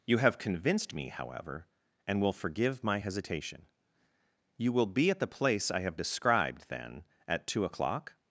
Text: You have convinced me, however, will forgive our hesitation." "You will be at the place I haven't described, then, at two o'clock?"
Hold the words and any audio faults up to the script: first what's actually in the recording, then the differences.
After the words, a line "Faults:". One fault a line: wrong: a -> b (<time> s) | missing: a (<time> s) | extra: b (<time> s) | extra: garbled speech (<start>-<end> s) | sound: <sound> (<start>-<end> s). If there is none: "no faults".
You have convinced me, however, and will forgive my hesitation." "You will be at the place I have described, then, at two o'clock?"
Faults:
extra: and (2.1 s)
wrong: our -> my (2.8 s)
wrong: haven't -> have (5.8 s)